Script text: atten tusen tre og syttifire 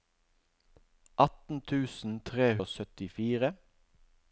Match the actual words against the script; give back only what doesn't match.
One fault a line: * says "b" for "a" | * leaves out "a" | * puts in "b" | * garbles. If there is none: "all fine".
all fine